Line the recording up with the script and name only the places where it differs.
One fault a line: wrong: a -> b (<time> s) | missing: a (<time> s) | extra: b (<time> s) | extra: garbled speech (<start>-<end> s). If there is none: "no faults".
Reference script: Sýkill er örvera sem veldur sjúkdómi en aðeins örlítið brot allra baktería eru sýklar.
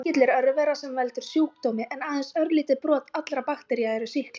no faults